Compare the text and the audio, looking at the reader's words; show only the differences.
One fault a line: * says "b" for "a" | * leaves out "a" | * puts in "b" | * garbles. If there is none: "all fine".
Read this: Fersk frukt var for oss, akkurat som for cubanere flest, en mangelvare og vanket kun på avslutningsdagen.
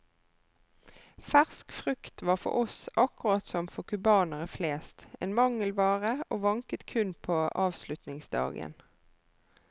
all fine